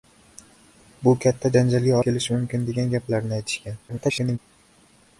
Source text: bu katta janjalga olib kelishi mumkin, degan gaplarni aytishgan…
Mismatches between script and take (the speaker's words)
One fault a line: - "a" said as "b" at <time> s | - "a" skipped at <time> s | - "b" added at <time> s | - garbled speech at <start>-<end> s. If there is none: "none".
- "olib" skipped at 2.0 s
- garbled speech at 3.9-4.4 s